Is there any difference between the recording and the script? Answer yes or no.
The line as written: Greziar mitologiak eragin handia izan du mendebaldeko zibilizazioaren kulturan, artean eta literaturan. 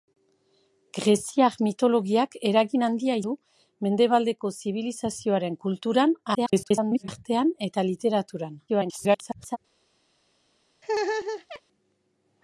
yes